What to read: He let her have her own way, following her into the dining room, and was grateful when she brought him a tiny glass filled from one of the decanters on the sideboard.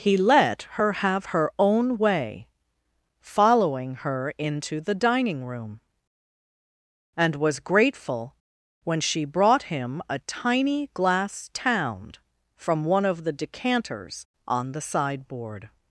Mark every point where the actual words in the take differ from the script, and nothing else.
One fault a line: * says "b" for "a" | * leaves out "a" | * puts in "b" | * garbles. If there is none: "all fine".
* says "tound" for "filled"